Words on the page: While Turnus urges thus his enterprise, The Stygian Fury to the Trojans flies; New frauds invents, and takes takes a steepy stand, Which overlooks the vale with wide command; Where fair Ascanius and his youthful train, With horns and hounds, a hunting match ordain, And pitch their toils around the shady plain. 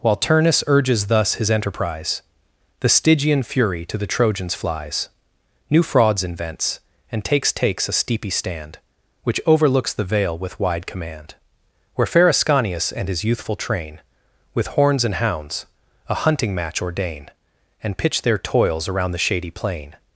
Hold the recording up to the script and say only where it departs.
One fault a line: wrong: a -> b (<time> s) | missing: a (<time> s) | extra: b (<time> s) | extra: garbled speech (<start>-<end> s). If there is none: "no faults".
no faults